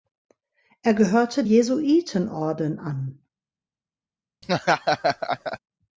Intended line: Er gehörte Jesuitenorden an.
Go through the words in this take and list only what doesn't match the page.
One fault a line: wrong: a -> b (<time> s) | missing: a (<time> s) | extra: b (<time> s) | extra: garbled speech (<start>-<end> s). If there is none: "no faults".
no faults